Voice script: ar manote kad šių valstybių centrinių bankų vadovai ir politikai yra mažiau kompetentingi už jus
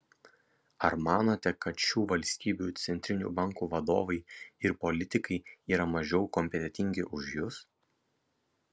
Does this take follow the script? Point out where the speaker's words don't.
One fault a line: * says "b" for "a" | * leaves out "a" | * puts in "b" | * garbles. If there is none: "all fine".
all fine